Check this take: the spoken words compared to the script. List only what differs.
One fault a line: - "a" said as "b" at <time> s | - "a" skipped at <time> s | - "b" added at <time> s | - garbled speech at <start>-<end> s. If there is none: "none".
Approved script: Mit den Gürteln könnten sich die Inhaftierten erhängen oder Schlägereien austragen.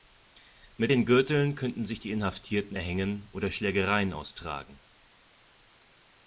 none